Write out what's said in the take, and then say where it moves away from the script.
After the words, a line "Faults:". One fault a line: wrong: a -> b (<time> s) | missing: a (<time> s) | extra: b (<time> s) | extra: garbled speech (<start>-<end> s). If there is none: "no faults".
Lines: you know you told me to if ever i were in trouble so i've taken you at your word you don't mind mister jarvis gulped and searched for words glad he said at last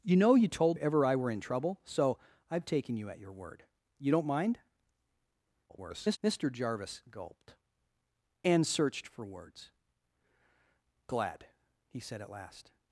you know you told ever i were in trouble so i've taken you at your word you don't mind [garbled] mister jarvis gulped and searched for words glad he said at last
Faults:
missing: me to if (0.8 s)
extra: garbled speech (5.7-6.2 s)